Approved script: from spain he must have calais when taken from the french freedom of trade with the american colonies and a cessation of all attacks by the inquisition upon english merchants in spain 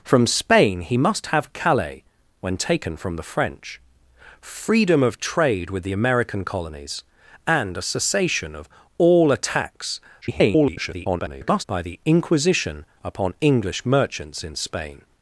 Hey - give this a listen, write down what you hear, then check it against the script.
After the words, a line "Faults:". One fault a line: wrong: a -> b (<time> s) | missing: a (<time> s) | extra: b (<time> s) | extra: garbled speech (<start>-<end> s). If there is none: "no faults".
from spain he must have calais when taken from the french freedom of trade with the american colonies and a cessation of all attacks [garbled] by the inquisition upon english merchants in spain
Faults:
extra: garbled speech (10.2-11.6 s)